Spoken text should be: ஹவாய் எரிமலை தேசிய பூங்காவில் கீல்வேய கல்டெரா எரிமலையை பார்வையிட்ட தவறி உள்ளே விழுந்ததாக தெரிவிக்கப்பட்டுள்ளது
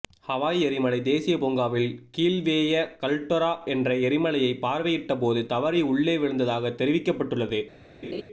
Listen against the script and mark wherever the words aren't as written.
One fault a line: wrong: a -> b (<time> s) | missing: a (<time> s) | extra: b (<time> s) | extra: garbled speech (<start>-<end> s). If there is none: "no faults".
extra: என்ற (3.6 s)
extra: போது (5.2 s)